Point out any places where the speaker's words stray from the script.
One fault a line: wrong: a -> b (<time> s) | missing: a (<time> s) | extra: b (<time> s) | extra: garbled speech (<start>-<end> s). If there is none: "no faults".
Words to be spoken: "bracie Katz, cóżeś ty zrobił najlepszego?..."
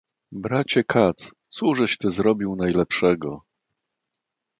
no faults